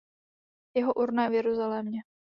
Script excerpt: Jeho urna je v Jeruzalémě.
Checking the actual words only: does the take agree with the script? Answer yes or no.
yes